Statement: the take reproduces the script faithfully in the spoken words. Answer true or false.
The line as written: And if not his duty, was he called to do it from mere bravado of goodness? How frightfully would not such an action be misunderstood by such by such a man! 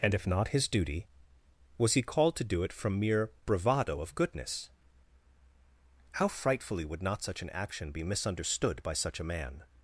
false